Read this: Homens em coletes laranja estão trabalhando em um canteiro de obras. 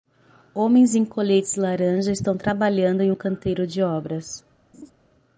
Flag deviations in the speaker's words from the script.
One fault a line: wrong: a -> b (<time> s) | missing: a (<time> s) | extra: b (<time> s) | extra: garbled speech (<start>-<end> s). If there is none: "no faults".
no faults